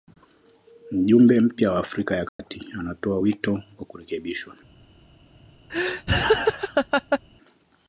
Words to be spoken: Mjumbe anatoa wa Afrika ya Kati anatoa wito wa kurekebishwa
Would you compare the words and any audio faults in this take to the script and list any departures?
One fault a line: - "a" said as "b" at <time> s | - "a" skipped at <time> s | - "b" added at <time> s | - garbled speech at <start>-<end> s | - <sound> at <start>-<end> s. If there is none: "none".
- "anatoa" said as "mpya" at 1.4 s
- dropout at 2.3-2.4 s
- laugh at 5.7-7.2 s